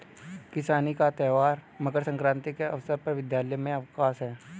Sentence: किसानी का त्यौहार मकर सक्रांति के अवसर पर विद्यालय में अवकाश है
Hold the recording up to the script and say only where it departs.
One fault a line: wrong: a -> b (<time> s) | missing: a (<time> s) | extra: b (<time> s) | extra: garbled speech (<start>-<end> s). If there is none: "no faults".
no faults